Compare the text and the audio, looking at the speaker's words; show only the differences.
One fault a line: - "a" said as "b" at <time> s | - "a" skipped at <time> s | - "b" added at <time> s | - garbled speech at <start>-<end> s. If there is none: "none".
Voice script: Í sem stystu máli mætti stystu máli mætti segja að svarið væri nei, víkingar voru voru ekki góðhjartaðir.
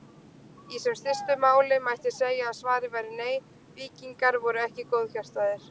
- "stystu máli mætti" skipped at 2.1 s
- "voru" skipped at 4.7 s